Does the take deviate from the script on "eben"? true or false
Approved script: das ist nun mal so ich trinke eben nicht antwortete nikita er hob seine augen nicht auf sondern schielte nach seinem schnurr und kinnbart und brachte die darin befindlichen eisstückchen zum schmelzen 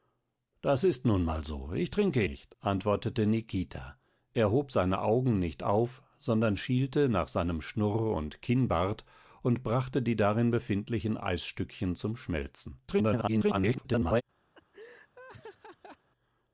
true